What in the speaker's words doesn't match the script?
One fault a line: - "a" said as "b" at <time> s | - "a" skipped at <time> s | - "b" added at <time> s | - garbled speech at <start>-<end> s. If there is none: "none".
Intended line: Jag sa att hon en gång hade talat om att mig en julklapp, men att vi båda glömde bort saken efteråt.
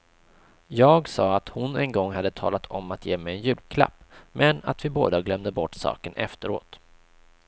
- "ge" added at 3.1 s